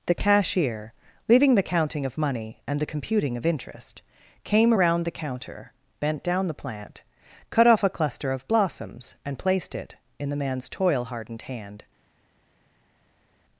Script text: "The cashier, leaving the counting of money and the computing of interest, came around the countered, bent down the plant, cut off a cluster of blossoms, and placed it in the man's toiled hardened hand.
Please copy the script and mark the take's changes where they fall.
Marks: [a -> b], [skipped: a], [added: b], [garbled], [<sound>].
"The cashier, leaving the counting of money and the computing of interest, came around the [countered, -> counter] bent down the plant, cut off a cluster of blossoms, and placed it in the man's [toiled -> toil] hardened hand.